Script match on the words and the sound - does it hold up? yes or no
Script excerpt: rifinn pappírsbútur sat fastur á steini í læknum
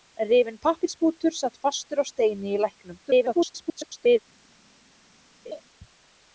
no